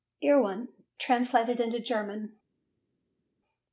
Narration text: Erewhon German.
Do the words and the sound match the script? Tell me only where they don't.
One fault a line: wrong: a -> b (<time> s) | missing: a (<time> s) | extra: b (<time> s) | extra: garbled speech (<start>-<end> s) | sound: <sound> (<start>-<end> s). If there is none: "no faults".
extra: translated into (1.0 s)